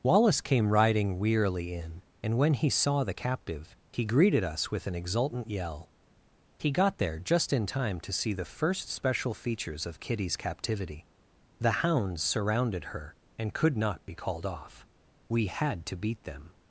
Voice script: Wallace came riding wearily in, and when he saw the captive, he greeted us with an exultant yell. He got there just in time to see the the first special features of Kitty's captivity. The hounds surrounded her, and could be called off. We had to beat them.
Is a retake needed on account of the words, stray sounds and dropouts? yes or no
yes